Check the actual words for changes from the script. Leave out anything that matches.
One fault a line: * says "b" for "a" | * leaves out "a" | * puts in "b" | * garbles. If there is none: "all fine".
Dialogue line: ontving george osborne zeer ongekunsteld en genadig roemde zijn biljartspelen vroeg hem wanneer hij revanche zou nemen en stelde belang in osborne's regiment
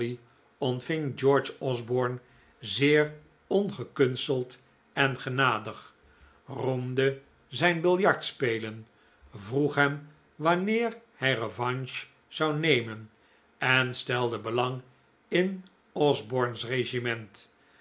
all fine